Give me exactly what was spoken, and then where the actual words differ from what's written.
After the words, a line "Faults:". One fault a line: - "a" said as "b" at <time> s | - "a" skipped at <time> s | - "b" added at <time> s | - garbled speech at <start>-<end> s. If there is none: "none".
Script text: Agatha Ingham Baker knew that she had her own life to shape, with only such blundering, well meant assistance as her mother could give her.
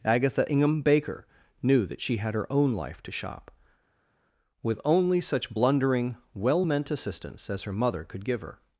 Agatha Ingham Baker knew that she had her own life to shop, with only such blundering, well meant assistance as her mother could give her.
Faults:
- "shape" said as "shop" at 3.1 s